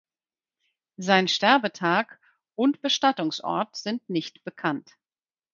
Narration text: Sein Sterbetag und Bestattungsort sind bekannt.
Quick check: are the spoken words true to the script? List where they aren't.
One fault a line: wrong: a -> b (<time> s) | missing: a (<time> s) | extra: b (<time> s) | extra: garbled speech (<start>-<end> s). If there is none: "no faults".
extra: nicht (4.1 s)